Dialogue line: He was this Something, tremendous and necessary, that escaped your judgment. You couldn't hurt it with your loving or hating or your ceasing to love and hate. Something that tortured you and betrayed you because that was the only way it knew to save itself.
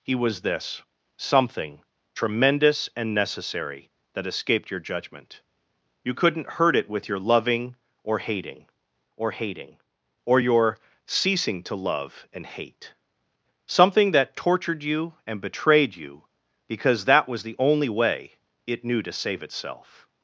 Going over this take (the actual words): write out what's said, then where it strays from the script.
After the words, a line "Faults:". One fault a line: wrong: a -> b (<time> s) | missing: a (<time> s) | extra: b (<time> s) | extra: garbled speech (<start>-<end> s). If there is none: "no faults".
He was this Something, tremendous and necessary, that escaped your judgment. You couldn't hurt it with your loving or hating or hating or your ceasing to love and hate. Something that tortured you and betrayed you because that was the only way it knew to save itself.
Faults:
extra: hating or (9.3 s)